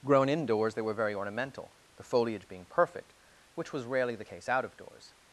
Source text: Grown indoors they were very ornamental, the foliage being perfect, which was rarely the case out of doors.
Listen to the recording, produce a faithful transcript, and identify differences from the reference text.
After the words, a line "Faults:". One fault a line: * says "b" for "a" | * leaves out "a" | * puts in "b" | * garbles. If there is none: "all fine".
Grown indoors they were very ornamental, the foliage being perfect, which was rarely the case out of doors.
Faults:
all fine